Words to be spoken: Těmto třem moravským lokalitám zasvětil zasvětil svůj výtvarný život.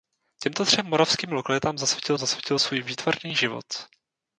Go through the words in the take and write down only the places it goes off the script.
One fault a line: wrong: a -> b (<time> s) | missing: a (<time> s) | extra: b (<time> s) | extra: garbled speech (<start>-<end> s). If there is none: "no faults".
no faults